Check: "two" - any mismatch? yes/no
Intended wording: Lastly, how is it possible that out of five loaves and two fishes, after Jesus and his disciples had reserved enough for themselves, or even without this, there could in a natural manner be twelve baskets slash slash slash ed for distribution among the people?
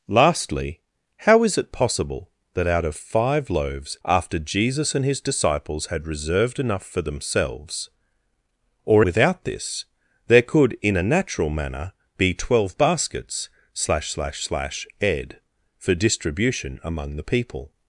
yes